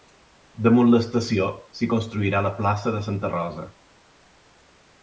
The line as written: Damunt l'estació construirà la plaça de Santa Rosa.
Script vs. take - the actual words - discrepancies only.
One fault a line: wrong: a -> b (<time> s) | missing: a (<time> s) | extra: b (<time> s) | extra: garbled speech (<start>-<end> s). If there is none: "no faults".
extra: s'hi (1.8 s)